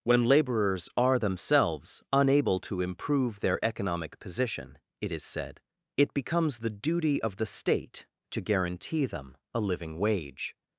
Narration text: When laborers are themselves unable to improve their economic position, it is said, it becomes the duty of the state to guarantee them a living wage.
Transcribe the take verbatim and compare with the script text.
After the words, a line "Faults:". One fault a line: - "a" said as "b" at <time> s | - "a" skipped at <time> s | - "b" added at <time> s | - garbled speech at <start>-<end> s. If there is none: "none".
When laborers are themselves unable to improve their economic position, it is said, it becomes the duty of the state to guarantee them a living wage.
Faults:
none